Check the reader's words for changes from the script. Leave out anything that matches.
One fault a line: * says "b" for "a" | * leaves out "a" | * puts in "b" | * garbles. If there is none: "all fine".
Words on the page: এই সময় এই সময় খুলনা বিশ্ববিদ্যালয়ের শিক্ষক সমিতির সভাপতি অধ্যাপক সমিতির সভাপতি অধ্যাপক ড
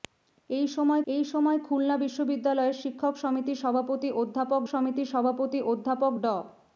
all fine